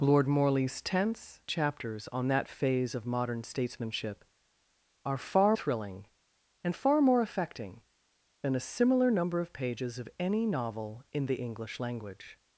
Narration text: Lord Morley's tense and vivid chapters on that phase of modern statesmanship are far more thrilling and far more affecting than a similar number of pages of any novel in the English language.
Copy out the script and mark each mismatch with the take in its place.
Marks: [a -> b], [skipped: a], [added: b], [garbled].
Lord Morley's tense [skipped: and vivid] chapters on that phase of modern statesmanship are far [skipped: more] thrilling and far more affecting than a similar number of pages of any novel in the English language.